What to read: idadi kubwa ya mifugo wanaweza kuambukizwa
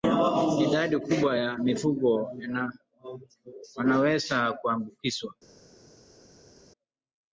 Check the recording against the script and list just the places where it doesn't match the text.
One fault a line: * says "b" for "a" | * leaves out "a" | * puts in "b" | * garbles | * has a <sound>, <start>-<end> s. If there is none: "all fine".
all fine